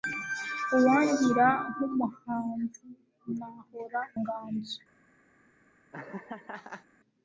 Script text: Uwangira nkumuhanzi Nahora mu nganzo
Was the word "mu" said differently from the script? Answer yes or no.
yes